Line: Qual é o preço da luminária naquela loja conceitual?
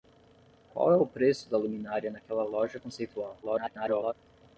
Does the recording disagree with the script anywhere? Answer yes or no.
yes